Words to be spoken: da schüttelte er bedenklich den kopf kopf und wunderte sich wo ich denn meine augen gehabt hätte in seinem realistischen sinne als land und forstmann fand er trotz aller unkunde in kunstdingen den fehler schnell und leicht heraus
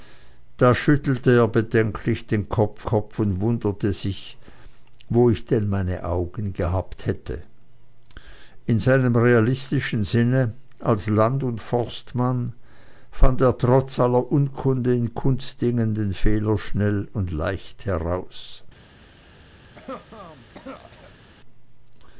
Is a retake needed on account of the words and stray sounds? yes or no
yes